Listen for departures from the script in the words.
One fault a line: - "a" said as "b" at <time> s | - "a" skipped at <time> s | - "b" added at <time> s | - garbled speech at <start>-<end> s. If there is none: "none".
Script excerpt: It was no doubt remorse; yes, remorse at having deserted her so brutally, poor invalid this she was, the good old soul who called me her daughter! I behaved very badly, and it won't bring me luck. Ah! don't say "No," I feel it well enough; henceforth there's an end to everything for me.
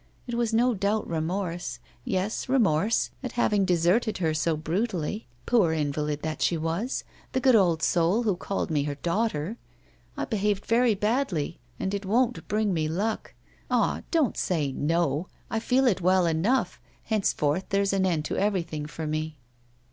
- "this" said as "that" at 6.2 s